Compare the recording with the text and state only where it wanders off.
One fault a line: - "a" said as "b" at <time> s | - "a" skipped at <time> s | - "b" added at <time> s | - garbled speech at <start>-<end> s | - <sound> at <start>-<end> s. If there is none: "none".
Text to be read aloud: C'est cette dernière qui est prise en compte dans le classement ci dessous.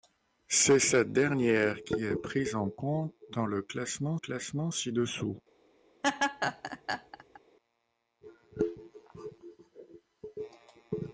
- "classement" added at 4.1 s
- laugh at 6.0-7.4 s